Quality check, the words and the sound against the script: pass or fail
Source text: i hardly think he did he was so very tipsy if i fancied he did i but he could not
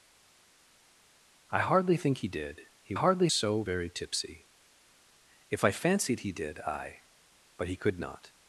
fail